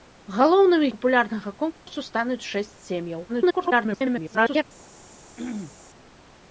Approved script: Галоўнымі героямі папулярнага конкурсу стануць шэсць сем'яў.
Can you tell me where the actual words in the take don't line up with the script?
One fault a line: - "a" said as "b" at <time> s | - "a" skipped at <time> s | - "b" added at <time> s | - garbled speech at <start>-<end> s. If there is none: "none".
- "героямі" skipped at 0.9 s
- garbled speech at 3.3-4.6 s